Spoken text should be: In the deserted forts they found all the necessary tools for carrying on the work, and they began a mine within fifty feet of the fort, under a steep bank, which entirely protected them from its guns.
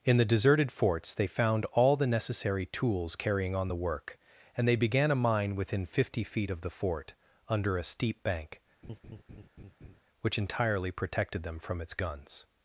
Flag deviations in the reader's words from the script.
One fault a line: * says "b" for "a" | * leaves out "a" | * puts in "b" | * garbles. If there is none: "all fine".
* leaves out "for"